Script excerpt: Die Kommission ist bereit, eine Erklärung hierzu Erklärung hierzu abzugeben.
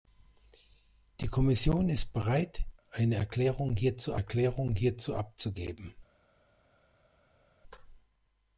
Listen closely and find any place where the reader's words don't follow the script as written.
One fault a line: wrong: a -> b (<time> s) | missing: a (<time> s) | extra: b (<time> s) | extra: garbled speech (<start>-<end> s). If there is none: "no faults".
no faults